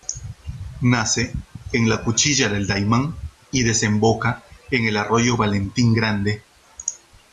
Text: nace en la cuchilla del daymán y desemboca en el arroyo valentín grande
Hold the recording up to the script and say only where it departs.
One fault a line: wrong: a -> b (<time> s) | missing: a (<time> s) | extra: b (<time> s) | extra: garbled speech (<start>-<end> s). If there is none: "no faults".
no faults